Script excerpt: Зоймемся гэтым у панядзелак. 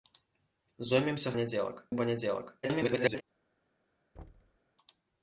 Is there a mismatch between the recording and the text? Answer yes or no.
yes